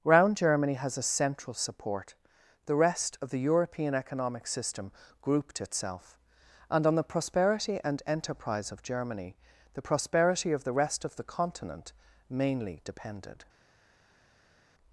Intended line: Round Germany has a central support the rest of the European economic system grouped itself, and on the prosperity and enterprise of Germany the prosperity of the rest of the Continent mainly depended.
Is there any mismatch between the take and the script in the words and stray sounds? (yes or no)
no